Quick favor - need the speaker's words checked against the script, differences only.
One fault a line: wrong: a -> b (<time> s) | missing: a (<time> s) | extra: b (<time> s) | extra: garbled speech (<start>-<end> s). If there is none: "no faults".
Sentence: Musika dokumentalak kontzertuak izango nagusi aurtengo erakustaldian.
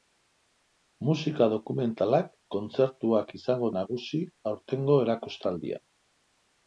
no faults